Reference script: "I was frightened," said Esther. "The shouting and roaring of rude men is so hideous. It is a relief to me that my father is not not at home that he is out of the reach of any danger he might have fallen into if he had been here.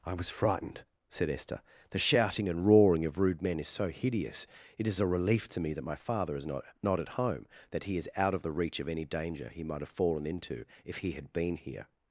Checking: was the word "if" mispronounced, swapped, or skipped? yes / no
no